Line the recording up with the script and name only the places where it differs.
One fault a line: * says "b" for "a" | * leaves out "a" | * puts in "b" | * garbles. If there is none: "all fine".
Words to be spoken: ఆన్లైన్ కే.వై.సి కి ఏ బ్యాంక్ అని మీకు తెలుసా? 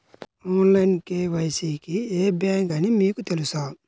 all fine